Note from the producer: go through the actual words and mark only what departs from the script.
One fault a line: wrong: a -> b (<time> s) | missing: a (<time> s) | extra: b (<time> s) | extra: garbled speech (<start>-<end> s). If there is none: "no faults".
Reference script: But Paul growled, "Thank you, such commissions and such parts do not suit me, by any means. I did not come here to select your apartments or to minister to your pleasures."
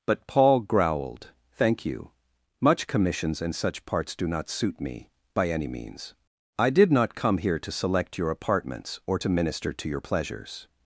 wrong: such -> much (2.6 s)